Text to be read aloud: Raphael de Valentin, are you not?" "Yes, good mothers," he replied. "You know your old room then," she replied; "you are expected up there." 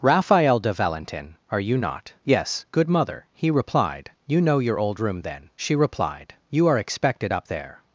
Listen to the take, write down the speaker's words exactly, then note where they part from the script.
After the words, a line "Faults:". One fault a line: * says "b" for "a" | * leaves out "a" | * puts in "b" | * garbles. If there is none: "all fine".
Raphael de Valentin, are you not?" "Yes, good mother," he replied. "You know your old room then," she replied; "you are expected up there."
Faults:
* says "mother" for "mothers"